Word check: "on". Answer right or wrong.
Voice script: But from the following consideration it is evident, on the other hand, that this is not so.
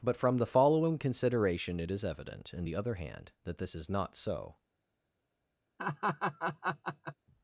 wrong